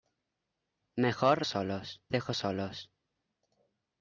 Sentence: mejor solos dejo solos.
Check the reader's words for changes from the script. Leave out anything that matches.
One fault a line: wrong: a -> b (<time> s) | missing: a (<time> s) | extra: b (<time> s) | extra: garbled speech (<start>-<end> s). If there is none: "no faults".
no faults